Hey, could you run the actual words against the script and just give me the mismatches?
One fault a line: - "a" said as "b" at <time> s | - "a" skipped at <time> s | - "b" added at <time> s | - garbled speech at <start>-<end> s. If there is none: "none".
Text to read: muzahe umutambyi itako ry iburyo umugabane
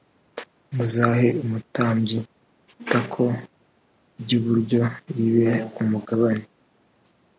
- "ribe" added at 5.1 s